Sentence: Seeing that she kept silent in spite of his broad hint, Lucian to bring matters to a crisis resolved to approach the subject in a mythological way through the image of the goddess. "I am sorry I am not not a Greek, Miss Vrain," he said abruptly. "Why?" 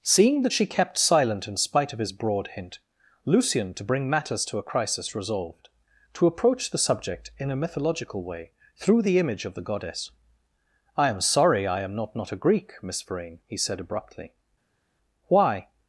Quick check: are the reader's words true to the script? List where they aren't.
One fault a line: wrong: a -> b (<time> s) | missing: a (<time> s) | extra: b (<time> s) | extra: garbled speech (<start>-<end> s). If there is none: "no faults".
no faults